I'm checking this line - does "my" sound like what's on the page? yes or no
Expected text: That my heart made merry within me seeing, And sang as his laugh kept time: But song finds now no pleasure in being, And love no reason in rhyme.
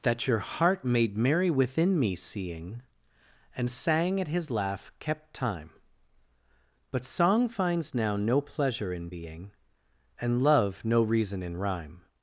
no